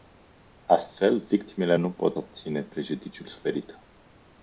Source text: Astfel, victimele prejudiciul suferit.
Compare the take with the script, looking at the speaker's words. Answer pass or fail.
fail